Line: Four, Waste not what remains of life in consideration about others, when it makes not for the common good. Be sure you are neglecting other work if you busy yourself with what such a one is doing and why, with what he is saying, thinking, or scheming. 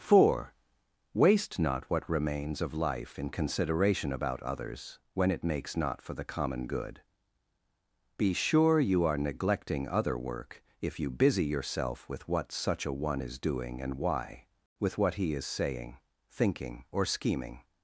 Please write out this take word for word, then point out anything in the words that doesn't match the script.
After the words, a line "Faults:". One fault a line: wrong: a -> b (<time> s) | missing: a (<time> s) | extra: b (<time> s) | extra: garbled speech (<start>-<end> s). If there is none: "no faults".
Four, Waste not what remains of life in consideration about others, when it makes not for the common good. Be sure you are neglecting other work if you busy yourself with what such a one is doing and why, with what he is saying, thinking, or scheming.
Faults:
no faults